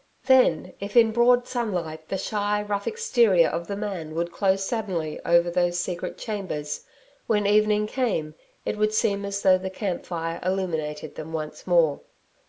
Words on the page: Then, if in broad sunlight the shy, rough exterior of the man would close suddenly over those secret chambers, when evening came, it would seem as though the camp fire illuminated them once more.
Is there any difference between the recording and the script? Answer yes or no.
no